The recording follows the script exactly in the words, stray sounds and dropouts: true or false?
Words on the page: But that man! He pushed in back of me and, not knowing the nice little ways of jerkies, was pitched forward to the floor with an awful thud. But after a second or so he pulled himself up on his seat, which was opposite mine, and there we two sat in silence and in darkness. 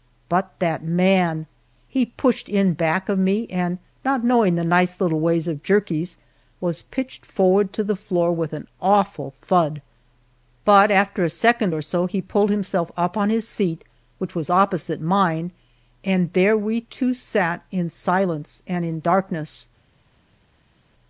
true